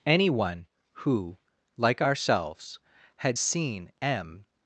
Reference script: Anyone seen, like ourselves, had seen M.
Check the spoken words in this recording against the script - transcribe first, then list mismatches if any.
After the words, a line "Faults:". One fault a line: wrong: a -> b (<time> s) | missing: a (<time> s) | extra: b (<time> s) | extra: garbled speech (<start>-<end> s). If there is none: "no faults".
Anyone who, like ourselves, had seen M.
Faults:
wrong: seen -> who (0.9 s)